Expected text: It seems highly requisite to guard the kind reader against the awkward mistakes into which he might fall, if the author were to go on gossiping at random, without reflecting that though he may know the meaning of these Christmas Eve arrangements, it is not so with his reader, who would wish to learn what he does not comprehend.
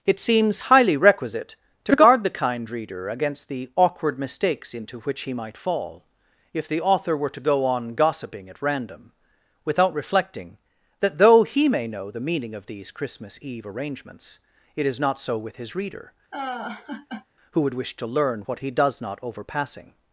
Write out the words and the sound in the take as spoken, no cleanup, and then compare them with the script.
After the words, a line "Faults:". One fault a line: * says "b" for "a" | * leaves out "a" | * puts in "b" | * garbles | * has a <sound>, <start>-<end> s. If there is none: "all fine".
It seems highly requisite to guard the kind reader against the awkward mistakes into which he might fall, if the author were to go on gossiping at random, without reflecting that though he may know the meaning of these Christmas Eve arrangements, it is not so with his reader, who would wish to learn what he does not overpassing.
Faults:
* has a laugh, 16.3-17.3 s
* says "overpassing" for "comprehend"